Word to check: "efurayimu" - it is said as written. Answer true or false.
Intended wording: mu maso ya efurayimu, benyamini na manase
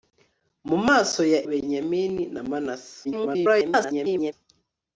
false